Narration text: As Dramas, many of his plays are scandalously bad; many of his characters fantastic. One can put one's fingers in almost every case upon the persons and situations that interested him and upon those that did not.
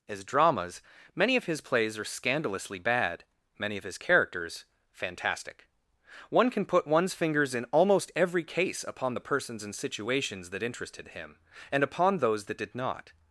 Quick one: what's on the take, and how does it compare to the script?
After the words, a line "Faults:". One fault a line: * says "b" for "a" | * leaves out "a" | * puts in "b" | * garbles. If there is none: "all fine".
As Dramas, many of his plays are scandalously bad; many of his characters fantastic. One can put one's fingers in almost every case upon the persons and situations that interested him and upon those that did not.
Faults:
all fine